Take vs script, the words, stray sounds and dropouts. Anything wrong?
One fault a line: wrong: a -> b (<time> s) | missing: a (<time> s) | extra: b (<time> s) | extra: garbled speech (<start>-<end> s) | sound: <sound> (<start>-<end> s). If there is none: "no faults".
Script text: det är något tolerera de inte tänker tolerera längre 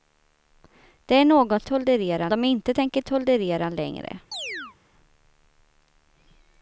sound: chirp (4.3-4.8 s)